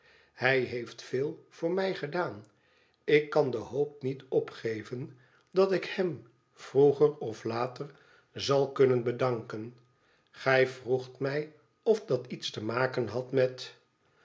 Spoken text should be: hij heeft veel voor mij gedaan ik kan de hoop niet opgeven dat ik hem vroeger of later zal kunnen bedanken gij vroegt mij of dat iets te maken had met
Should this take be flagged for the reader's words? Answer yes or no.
no